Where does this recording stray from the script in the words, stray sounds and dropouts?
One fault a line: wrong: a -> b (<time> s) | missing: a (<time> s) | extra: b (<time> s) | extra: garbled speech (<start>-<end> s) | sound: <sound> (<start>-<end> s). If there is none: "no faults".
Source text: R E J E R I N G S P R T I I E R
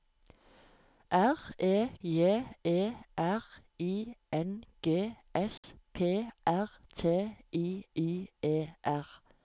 sound: dropout (5.6-5.6 s)